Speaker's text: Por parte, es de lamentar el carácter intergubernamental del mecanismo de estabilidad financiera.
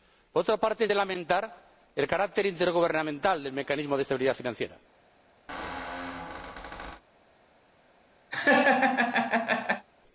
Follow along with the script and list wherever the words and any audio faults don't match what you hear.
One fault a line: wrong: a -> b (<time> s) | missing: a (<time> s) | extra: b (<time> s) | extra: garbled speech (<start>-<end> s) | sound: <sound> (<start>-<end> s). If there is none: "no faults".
extra: otra (0.4 s)
sound: squeak (5.5-7.0 s)
sound: laugh (8.3-9.9 s)